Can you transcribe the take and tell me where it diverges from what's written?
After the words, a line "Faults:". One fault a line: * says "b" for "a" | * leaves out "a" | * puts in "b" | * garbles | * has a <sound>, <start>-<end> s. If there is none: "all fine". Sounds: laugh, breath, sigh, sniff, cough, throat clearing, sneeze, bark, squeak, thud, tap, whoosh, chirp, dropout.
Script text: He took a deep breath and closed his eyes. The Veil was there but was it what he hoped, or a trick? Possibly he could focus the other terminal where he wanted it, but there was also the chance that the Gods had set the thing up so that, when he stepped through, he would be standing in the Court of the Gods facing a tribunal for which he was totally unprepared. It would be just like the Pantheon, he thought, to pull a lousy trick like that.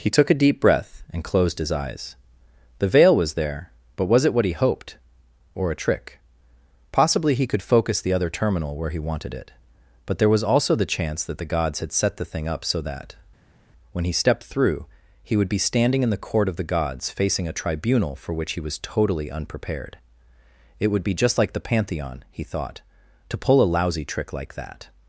He took a deep breath and closed his eyes. The Veil was there but was it what he hoped, or a trick? Possibly he could focus the other terminal where he wanted it, but there was also the chance that the Gods had set the thing up so that, when he stepped through, he would be standing in the Court of the Gods facing a tribunal for which he was totally unprepared. It would be just like the Pantheon, he thought, to pull a lousy trick like that.
Faults:
all fine